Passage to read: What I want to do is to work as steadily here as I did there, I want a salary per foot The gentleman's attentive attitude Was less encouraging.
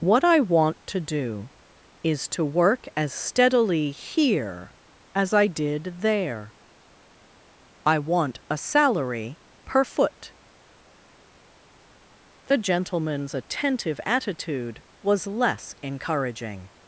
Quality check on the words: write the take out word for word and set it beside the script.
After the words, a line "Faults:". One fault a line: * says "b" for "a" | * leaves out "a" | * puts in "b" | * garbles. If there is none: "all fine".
What I want to do is to work as steadily here as I did there, I want a salary per foot The gentleman's attentive attitude Was less encouraging.
Faults:
all fine